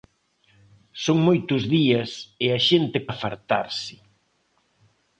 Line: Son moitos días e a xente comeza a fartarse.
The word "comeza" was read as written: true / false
false